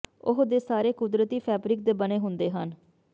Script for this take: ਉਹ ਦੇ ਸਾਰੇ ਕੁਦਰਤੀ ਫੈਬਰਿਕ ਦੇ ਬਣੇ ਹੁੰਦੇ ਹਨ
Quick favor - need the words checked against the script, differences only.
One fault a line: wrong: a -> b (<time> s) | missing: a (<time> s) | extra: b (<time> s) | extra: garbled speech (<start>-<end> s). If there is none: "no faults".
no faults